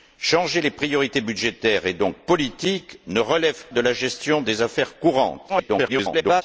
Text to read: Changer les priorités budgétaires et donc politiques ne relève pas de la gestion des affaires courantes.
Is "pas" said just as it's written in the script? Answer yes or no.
no